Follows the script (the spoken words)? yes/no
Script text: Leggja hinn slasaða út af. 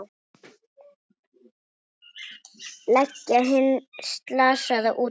yes